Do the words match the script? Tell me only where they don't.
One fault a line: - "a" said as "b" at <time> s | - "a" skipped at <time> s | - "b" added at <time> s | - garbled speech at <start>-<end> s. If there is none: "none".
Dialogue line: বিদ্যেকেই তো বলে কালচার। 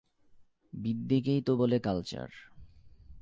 none